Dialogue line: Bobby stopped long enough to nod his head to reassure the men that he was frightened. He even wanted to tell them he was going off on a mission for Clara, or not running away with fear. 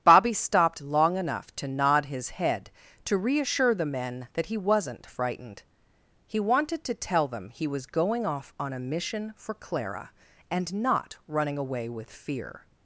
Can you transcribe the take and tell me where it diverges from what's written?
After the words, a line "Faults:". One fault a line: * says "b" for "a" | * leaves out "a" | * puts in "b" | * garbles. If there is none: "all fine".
Bobby stopped long enough to nod his head to reassure the men that he wasn't frightened. He wanted to tell them he was going off on a mission for Clara, and not running away with fear.
Faults:
* says "wasn't" for "was"
* leaves out "even"
* says "and" for "or"